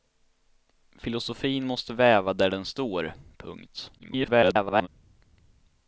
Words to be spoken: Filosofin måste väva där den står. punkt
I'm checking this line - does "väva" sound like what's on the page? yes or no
yes